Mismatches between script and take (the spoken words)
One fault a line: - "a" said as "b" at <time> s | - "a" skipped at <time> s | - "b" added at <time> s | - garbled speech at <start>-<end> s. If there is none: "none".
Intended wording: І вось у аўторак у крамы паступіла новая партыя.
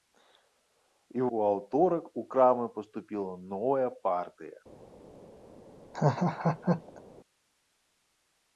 - "вось" skipped at 1.3 s